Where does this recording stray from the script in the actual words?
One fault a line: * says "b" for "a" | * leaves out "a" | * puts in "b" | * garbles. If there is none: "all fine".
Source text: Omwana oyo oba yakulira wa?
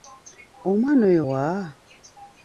* leaves out "oba yakulira"